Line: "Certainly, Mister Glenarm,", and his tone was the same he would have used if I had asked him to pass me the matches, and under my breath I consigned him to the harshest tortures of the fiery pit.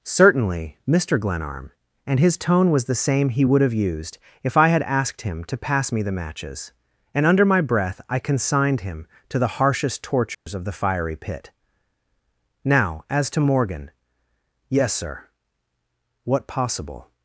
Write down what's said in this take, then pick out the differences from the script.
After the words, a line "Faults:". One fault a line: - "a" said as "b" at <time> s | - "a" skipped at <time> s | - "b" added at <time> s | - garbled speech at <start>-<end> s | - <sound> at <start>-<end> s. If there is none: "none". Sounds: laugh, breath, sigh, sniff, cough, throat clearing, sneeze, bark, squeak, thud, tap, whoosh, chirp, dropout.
"Certainly, Mister Glenarm,", and his tone was the same he would have used if I had asked him to pass me the matches, and under my breath I consigned him to the harshest tortures of the fiery pit. "Now, as to Morgan," "Yes, sir." "What possible
Faults:
- dropout at 10.3-10.5 s
- "Now as to Morgan Yes sir What possible" added at 12.6 s